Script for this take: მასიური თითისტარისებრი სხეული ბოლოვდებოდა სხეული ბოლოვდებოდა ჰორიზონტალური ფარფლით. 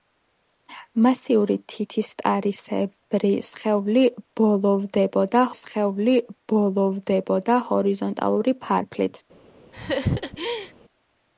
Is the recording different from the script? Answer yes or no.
no